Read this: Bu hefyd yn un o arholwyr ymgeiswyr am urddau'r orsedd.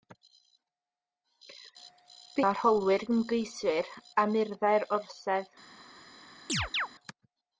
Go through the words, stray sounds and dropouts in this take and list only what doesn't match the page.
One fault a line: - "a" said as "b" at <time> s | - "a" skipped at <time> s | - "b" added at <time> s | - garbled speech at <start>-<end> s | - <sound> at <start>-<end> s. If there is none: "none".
- "hefyd yn un" skipped at 2.5 s
- chirp at 6.5-6.9 s